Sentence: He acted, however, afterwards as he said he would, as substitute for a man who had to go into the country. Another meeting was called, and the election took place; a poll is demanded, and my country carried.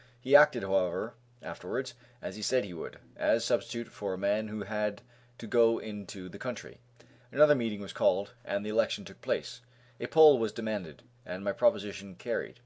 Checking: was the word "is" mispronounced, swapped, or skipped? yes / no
yes